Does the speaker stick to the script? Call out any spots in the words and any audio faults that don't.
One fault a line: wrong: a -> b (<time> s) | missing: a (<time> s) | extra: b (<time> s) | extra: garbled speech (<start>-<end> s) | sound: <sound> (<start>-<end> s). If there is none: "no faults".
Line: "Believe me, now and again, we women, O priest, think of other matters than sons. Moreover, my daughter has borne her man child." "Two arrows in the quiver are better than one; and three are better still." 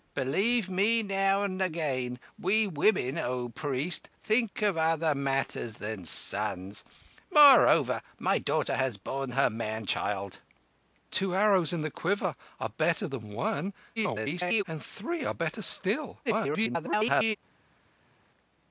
extra: garbled speech (14.0-14.6 s)
extra: garbled speech (16.2-17.4 s)